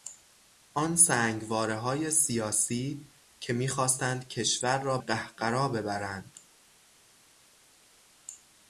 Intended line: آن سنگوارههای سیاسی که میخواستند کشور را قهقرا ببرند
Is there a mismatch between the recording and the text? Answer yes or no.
no